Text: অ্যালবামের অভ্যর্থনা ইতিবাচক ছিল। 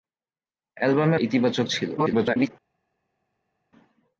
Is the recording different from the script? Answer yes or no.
yes